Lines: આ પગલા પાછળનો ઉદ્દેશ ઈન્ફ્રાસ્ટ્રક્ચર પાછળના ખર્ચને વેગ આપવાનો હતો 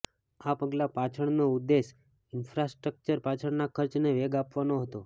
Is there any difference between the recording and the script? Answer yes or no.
no